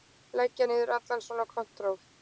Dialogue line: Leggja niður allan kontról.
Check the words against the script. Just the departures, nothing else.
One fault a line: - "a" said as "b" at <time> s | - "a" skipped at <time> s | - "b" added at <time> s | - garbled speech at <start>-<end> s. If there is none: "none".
- "svona" added at 1.3 s